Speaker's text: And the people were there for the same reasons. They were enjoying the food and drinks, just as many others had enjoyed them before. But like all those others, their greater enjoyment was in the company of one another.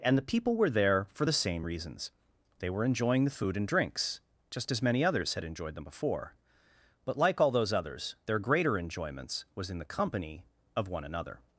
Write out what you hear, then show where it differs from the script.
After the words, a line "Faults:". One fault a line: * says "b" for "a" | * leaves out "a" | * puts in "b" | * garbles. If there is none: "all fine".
And the people were there for the same reasons. They were enjoying the food and drinks, just as many others had enjoyed them before. But like all those others, their greater enjoyments was in the company of one another.
Faults:
* says "enjoyments" for "enjoyment"